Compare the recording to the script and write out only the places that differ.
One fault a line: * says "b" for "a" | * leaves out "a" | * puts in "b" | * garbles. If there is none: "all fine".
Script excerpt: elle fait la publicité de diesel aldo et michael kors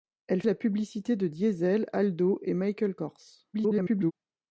* leaves out "fait"
* garbles